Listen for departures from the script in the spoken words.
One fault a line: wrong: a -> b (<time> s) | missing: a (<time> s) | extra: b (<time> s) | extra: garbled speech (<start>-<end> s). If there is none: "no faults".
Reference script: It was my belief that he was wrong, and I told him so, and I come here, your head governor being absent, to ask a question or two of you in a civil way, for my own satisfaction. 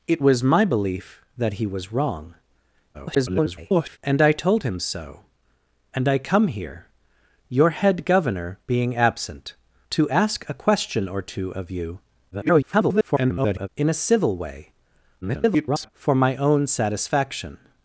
extra: garbled speech (2.9-4.0 s)
extra: garbled speech (12.3-13.7 s)
extra: garbled speech (15.2-15.9 s)